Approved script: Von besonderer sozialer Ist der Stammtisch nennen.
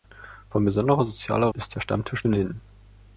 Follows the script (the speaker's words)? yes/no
yes